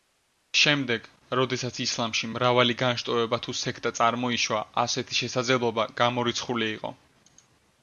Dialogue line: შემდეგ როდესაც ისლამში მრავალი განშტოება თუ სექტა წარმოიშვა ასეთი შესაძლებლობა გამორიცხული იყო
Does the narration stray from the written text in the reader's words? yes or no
no